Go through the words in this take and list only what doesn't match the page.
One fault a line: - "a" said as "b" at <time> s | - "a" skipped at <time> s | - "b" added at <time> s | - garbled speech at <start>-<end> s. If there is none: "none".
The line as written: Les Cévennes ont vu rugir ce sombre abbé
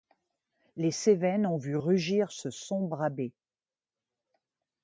none